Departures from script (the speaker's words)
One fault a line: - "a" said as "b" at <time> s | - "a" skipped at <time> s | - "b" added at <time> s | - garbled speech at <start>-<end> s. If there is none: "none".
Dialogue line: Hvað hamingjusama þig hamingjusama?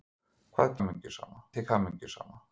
none